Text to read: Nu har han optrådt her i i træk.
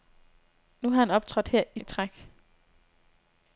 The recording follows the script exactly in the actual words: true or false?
true